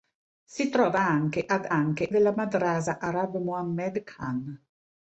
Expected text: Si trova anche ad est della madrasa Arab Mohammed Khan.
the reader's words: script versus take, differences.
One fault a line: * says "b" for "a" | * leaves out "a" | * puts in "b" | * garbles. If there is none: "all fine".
* says "anche" for "est"